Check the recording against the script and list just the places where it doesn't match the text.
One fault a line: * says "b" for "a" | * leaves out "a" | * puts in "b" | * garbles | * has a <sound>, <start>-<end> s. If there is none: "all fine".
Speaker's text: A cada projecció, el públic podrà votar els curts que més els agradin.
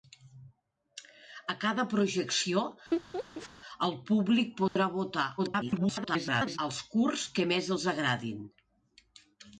* has a laugh, 2.9-3.5 s
* has a dropout, 4.7-4.8 s
* garbles